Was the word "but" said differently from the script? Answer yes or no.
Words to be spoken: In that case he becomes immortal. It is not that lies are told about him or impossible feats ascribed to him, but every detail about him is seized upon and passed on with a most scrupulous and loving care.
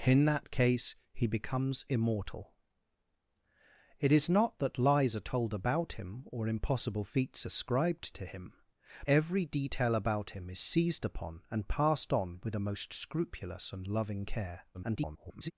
yes